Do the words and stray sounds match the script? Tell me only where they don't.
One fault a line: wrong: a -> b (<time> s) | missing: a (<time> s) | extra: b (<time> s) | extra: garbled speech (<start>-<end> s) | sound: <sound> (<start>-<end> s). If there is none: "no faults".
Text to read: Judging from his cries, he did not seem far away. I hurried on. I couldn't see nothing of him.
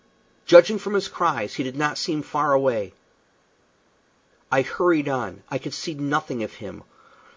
wrong: couldn't -> could (5.6 s)